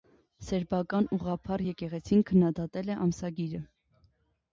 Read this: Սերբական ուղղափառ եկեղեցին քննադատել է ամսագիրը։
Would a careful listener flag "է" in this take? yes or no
no